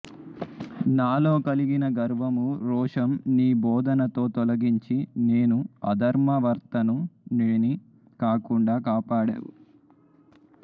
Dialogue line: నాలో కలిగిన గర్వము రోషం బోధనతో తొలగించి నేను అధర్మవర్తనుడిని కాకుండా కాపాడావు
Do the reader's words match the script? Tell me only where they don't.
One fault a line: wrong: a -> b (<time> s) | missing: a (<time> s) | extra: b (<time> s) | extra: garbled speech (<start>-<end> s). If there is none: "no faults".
extra: నీ (3.3 s)